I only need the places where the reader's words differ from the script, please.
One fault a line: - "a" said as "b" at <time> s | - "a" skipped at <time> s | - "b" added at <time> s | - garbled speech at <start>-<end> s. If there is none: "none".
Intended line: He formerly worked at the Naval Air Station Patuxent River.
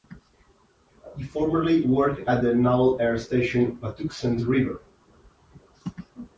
none